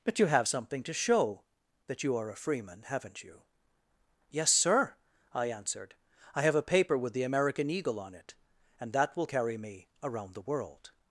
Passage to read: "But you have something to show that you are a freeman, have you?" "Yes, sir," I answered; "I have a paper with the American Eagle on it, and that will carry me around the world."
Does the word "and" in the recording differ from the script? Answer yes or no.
no